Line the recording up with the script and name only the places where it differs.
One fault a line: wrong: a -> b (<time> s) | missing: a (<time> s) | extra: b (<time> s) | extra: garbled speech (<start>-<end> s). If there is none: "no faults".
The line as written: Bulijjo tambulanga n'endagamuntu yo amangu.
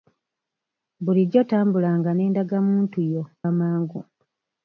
no faults